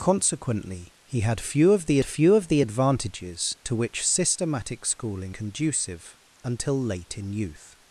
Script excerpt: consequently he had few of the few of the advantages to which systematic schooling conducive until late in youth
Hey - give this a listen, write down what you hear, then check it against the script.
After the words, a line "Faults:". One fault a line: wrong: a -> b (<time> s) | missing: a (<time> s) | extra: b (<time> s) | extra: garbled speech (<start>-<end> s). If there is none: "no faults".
consequently he had few of the few of the advantages to which systematic schooling conducive until late in youth
Faults:
no faults